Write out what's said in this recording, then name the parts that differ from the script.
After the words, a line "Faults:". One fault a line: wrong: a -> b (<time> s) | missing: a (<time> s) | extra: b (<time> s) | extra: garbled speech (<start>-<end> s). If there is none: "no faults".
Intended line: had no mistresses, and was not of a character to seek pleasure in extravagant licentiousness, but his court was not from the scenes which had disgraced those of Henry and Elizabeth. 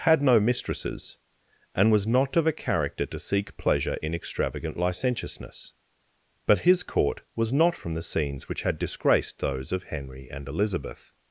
had no mistresses, and was not of a character to seek pleasure in extravagant licentiousness, but his court was not from the scenes which had disgraced those of Henry and Elizabeth.
Faults:
no faults